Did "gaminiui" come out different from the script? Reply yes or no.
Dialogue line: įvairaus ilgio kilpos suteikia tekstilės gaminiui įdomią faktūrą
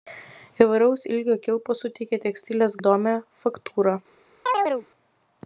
yes